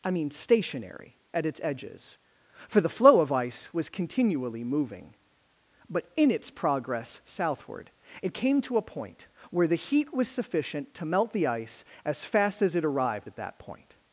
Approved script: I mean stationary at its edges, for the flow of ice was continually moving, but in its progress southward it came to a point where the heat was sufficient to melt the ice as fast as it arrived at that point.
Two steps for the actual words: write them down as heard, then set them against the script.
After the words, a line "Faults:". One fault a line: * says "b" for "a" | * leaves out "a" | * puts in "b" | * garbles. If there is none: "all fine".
I mean stationary at its edges, for the flow of ice was continually moving, but in its progress southward it came to a point where the heat was sufficient to melt the ice as fast as it arrived at that point.
Faults:
all fine